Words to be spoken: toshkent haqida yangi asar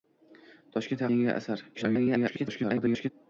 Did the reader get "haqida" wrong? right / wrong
wrong